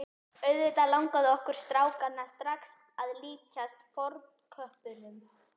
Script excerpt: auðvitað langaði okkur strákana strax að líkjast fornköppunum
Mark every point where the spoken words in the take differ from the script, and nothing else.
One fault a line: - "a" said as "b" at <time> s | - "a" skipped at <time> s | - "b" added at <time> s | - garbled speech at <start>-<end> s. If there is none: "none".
none